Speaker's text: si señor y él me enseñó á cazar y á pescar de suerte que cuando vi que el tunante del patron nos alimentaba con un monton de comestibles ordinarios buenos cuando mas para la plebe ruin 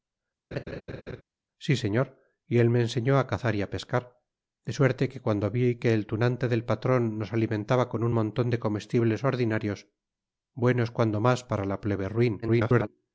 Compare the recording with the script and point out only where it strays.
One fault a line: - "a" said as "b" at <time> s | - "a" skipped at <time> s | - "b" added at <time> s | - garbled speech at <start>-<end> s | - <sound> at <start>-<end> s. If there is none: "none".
- laugh at 0.5-1.2 s
- garbled speech at 12.4-12.9 s